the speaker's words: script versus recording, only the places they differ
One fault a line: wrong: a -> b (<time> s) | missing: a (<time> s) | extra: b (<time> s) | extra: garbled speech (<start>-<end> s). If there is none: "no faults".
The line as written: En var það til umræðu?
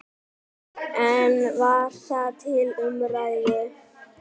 no faults